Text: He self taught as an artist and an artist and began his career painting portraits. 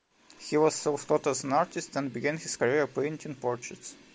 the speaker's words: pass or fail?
fail